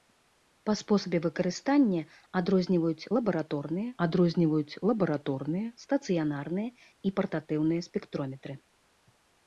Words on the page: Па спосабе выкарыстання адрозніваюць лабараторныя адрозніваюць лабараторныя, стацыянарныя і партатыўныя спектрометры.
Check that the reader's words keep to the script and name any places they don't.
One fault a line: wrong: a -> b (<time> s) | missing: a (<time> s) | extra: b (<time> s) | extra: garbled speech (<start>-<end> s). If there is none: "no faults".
no faults